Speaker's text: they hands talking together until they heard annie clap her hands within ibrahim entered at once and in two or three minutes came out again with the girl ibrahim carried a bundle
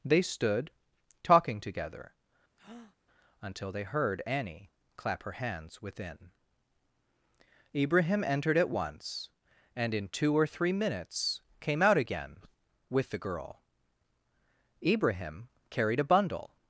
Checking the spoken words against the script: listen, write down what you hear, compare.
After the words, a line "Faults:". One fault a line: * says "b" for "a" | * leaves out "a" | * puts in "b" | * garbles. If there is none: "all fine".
they stood talking together until they heard annie clap her hands within ibrahim entered at once and in two or three minutes came out again with the girl ibrahim carried a bundle
Faults:
* says "stood" for "hands"